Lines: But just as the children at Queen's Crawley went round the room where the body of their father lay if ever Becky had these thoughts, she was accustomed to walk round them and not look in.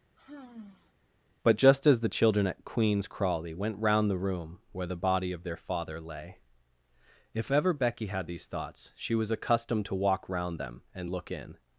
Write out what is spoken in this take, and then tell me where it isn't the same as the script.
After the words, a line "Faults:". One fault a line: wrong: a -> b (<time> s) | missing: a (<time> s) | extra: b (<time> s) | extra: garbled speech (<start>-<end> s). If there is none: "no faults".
But just as the children at Queen's Crawley went round the room where the body of their father lay if ever Becky had these thoughts, she was accustomed to walk round them and look in.
Faults:
missing: not (11.1 s)